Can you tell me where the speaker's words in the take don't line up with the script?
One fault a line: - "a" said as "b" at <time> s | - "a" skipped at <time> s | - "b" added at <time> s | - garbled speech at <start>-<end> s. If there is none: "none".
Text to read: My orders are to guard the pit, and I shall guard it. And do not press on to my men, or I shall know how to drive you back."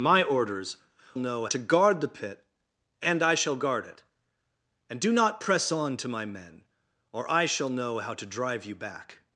- "are" said as "know" at 1.2 s